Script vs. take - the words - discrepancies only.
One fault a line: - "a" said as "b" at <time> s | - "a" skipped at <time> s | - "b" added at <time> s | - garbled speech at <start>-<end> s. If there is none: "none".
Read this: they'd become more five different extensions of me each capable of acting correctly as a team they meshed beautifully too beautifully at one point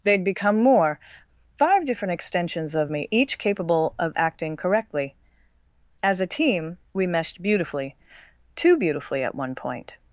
- "they" said as "we" at 6.9 s